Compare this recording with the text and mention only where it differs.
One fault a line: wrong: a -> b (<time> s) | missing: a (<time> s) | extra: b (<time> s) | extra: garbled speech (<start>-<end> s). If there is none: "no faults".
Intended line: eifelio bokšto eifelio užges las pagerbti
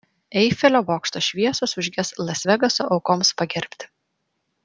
wrong: eifelio -> šviesos (1.2 s)
extra: vegaso aukoms (2.5 s)